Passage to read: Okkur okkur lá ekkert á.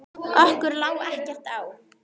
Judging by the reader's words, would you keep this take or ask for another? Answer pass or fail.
fail